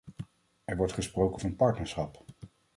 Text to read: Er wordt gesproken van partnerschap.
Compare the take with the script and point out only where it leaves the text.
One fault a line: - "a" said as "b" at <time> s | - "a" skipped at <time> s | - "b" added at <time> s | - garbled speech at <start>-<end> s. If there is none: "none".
none